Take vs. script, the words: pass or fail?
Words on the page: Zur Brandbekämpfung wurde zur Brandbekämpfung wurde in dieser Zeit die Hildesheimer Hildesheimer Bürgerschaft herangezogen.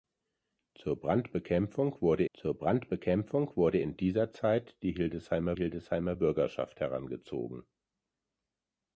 pass